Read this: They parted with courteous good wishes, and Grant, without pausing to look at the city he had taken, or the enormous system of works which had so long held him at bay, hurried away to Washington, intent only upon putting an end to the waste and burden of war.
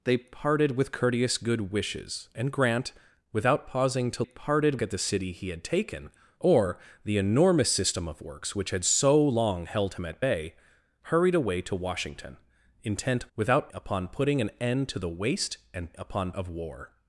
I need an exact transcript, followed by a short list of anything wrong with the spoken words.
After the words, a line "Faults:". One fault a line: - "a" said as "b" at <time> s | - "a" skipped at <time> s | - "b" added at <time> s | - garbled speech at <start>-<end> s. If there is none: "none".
They parted with courteous good wishes, and Grant, without pausing to parted at the city he had taken, or the enormous system of works which had so long held him at bay, hurried away to Washington, intent without upon putting an end to the waste and upon of war.
Faults:
- "look" said as "parted" at 4.2 s
- "only" said as "without" at 13.3 s
- "burden" said as "upon" at 16.0 s